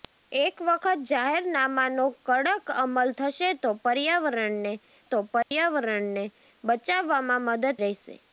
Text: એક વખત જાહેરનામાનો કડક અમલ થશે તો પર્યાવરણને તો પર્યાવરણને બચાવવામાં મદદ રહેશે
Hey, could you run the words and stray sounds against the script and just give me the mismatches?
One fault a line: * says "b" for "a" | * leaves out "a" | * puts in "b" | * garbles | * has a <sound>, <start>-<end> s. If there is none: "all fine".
* has a dropout, 5.4-5.5 s